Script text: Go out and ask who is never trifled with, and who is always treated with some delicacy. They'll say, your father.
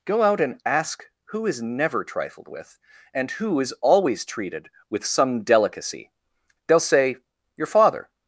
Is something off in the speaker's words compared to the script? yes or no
no